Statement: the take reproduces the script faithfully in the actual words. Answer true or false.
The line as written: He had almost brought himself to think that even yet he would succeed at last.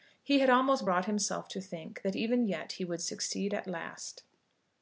true